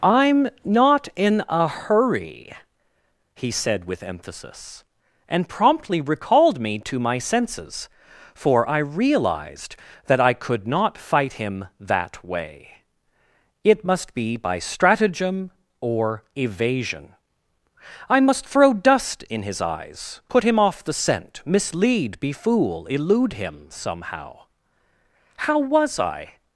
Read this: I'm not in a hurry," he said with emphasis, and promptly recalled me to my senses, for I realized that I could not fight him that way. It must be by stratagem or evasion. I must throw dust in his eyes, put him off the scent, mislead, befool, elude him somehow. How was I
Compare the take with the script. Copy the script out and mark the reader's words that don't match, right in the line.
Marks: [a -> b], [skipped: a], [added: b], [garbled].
I'm not in a hurry," he said with emphasis, and promptly recalled me to my senses, for I realized that I could not fight him that way. It must be by stratagem or evasion. I must throw dust in his eyes, put him off the scent, mislead, befool, elude him somehow. How was I